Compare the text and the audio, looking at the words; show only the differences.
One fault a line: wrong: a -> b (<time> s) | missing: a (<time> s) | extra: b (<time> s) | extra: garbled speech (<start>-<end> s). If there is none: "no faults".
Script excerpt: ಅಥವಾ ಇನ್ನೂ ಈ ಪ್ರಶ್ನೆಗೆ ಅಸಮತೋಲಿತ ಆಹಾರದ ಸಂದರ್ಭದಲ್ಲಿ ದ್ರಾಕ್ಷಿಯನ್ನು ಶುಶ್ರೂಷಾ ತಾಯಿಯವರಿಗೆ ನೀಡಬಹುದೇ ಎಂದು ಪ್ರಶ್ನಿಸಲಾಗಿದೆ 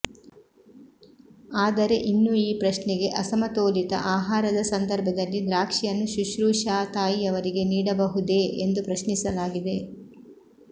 wrong: ಅಥವಾ -> ಆದರೆ (1.6 s)